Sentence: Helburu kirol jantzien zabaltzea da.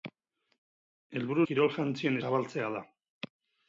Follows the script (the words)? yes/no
yes